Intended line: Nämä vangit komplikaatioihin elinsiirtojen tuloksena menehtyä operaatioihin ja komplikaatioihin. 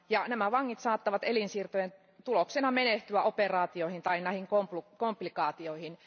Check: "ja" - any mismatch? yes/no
yes